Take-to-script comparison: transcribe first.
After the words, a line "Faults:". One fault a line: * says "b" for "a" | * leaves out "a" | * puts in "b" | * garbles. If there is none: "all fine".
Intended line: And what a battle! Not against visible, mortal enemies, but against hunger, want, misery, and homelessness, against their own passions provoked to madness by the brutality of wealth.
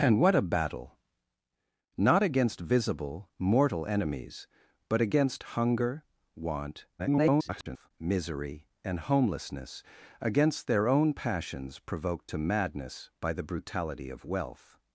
And what a battle! Not against visible, mortal enemies, but against hunger, want, [garbled] misery, and homelessness, against their own passions provoked to madness by the brutality of wealth.
Faults:
* garbles